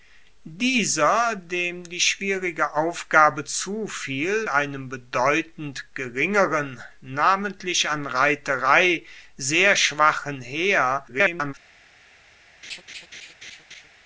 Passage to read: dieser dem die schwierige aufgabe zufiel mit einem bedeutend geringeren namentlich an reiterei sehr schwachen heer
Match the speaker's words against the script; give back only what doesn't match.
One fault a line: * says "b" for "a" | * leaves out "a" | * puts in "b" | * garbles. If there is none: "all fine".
* leaves out "mit"
* garbles